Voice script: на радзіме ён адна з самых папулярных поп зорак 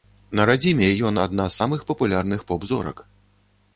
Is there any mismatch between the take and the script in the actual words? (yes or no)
no